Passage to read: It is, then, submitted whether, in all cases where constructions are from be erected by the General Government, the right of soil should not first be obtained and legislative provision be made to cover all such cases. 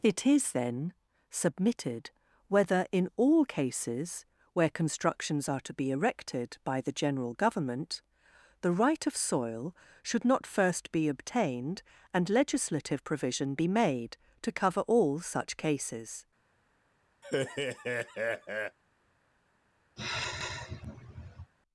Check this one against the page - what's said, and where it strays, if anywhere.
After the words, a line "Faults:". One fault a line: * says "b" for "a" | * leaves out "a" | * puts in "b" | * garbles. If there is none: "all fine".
It is, then, submitted whether, in all cases where constructions are to be erected by the General Government, the right of soil should not first be obtained and legislative provision be made to cover all such cases.
Faults:
* says "to" for "from"